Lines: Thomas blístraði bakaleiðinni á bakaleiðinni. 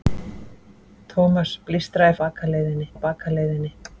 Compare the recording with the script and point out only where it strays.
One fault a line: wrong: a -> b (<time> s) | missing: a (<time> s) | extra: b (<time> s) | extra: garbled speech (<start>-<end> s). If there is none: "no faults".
no faults